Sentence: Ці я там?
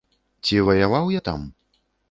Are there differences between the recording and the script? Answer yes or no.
yes